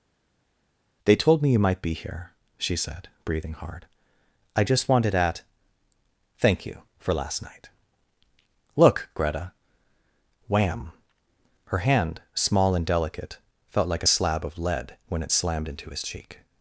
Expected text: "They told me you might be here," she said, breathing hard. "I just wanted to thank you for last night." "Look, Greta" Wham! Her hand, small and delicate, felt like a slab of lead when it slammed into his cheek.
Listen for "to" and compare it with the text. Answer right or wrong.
wrong